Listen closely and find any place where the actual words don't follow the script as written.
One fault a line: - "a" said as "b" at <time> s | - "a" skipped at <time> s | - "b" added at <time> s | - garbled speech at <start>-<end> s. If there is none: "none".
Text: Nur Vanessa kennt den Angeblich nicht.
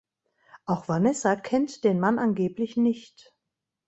- "Nur" said as "Auch" at 0.7 s
- "Mann" added at 2.0 s